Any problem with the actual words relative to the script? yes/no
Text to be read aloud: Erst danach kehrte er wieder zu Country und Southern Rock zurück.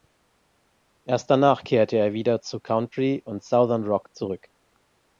no